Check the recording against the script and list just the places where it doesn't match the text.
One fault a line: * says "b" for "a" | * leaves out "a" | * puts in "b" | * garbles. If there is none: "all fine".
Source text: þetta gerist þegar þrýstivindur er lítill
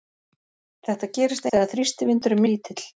all fine